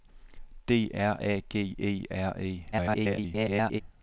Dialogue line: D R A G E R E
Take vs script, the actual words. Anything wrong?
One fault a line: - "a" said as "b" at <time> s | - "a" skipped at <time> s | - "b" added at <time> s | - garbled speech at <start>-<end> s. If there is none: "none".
- garbled speech at 2.7-3.8 s